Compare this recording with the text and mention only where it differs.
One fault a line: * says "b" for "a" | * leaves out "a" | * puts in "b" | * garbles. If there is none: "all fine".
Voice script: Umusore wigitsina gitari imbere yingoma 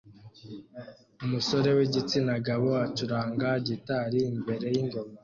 * puts in "gabo acuranga"